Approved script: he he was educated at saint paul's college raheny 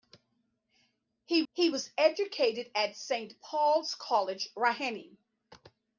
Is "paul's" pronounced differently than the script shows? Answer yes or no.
no